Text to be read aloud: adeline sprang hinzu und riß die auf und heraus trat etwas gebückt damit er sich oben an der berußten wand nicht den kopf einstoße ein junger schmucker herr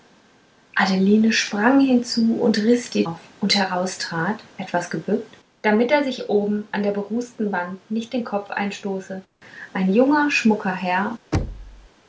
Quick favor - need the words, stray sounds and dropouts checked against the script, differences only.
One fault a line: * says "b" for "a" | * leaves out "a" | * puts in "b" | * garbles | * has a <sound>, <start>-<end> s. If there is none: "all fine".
* has a thud, 11.3-11.9 s